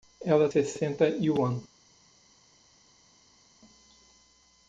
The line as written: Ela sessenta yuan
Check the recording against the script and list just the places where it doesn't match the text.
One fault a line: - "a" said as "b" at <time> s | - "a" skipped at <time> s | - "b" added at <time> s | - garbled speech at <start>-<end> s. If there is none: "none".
none